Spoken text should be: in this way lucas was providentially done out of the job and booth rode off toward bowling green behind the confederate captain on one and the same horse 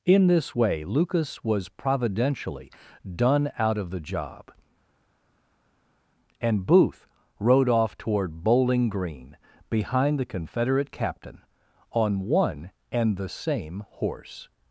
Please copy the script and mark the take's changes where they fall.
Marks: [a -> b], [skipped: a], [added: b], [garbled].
in this way lucas was providentially done out of the job and booth rode off toward bowling green behind the confederate captain on one and the same horse